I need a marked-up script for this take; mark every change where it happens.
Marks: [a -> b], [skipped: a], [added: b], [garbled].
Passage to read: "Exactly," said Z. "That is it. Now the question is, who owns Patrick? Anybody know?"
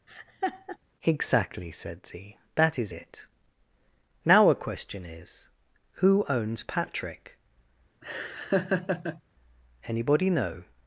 "Exactly," said Z. "That is it. Now [the -> a] question is, who owns Patrick? Anybody know?"